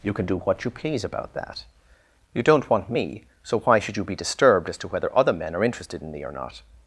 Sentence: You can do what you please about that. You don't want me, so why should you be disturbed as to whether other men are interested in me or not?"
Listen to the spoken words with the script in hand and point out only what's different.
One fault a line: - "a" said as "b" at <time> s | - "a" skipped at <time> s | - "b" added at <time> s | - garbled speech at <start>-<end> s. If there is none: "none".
none